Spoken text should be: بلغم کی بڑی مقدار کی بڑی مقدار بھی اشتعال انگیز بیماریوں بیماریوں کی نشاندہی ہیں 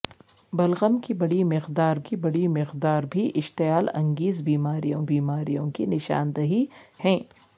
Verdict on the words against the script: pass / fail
pass